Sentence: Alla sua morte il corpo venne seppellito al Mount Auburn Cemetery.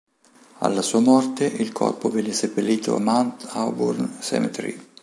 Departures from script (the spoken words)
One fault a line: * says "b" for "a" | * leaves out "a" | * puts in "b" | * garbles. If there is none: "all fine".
* leaves out "al"